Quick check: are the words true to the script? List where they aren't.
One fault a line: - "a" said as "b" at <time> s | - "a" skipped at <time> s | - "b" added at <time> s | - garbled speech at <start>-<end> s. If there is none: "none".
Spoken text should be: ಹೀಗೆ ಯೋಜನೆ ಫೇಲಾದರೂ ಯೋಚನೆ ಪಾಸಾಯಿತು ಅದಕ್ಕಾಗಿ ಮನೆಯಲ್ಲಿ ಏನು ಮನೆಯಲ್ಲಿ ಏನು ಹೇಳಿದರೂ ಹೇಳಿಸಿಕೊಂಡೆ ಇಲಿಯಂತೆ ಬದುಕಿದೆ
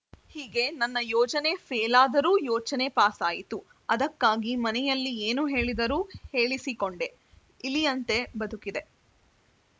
- "ನನ್ನ" added at 0.8 s
- "ಮನೆಯಲ್ಲಿ ಏನು" skipped at 5.5 s